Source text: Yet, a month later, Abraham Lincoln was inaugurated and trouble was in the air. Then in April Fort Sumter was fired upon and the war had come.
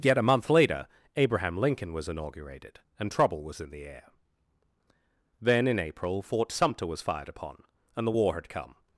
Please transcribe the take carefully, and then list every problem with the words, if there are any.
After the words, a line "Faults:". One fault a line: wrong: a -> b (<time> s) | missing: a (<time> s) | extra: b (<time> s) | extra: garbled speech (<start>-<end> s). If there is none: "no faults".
Yet, a month later, Abraham Lincoln was inaugurated and trouble was in the air. Then in April Fort Sumter was fired upon and the war had come.
Faults:
no faults